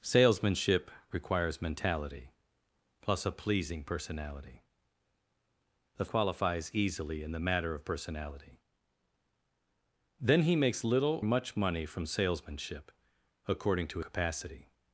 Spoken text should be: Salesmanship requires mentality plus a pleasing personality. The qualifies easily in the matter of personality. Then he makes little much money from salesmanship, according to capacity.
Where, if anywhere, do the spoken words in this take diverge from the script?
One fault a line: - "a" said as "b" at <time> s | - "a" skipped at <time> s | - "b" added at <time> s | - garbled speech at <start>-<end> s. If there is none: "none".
none